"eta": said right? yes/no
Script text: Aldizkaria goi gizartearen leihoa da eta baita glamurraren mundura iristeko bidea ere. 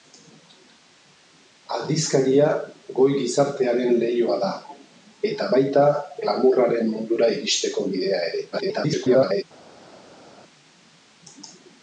yes